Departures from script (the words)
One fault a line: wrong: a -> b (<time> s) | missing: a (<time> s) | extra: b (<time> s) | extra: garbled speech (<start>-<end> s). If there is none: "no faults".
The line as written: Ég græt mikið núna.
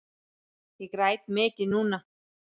no faults